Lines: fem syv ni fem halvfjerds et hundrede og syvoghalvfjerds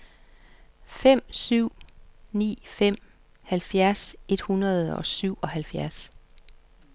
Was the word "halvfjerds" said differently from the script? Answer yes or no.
no